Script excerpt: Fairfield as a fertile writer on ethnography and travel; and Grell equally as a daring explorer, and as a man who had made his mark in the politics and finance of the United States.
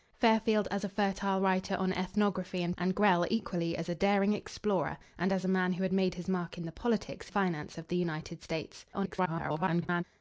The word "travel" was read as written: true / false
false